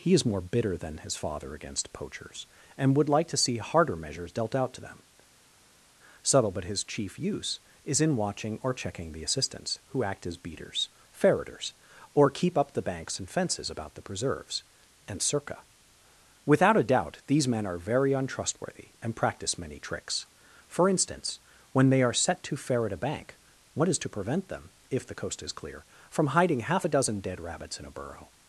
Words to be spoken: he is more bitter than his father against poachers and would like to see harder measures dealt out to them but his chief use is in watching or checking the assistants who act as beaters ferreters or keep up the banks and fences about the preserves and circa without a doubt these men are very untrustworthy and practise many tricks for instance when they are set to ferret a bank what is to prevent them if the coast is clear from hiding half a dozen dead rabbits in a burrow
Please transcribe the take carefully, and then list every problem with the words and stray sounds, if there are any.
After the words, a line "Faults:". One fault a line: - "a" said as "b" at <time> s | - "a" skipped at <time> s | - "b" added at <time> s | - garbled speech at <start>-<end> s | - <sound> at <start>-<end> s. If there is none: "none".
he is more bitter than his father against poachers and would like to see harder measures dealt out to them subtle but his chief use is in watching or checking the assistants who act as beaters ferreters or keep up the banks and fences about the preserves and circa without a doubt these men are very untrustworthy and practice many tricks for instance when they are set to ferret a bank what is to prevent them if the coast is clear from hiding half a dozen dead rabbits in a burrow
Faults:
- "subtle" added at 6.2 s
- "practise" said as "practice" at 19.2 s